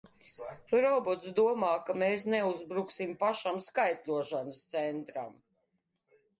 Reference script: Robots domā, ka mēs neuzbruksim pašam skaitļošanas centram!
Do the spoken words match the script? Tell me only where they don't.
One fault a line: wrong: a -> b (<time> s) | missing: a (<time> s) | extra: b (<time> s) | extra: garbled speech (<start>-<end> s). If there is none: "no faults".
no faults